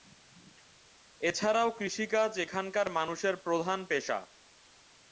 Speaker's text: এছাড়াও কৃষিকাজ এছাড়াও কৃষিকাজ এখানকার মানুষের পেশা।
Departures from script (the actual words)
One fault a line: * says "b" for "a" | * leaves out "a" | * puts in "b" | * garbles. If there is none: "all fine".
* leaves out "এছাড়াও কৃষিকাজ"
* puts in "প্রধান"